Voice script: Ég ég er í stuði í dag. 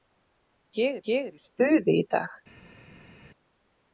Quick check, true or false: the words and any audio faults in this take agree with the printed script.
true